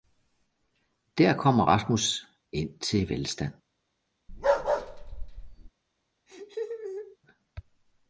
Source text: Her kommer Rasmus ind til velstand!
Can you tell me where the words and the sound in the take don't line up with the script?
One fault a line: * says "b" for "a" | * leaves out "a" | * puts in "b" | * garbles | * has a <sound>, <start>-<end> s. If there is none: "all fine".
* says "Der" for "Her"
* has a bark, 4.3-5.7 s
* has a laugh, 6.3-7.2 s